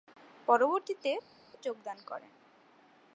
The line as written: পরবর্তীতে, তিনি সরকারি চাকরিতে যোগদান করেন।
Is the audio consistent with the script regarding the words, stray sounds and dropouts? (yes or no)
no